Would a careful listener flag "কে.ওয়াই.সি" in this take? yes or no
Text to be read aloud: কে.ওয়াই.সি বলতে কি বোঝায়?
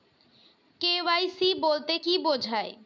no